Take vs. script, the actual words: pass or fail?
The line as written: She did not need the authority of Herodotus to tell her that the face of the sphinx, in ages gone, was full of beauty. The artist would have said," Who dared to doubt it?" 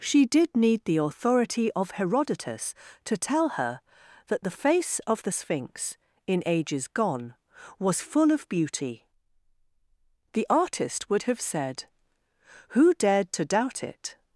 fail